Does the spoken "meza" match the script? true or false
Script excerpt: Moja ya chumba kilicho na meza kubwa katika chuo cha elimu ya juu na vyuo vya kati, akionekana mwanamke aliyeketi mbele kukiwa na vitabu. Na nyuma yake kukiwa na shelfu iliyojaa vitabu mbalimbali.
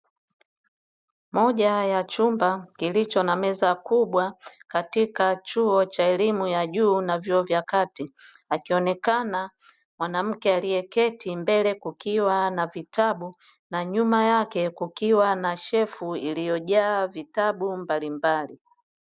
true